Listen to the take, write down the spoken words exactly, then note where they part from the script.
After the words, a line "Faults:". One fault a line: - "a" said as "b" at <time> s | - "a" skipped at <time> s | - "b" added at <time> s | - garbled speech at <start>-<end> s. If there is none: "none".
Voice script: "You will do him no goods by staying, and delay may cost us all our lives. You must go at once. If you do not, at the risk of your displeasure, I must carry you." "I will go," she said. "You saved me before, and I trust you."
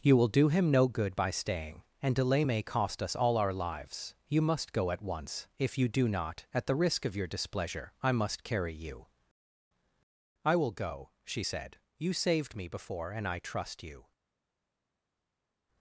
"You will do him no good by staying, and delay may cost us all our lives. You must go at once. If you do not, at the risk of your displeasure, I must carry you." "I will go," she said. "You saved me before, and I trust you."
Faults:
- "goods" said as "good" at 0.9 s